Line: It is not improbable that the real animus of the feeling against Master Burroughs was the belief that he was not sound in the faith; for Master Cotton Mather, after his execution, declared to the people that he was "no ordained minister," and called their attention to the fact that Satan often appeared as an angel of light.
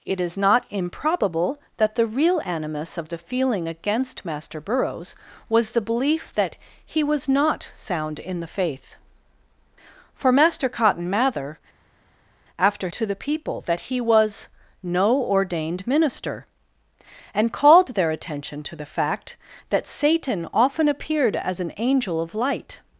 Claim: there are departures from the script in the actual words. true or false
true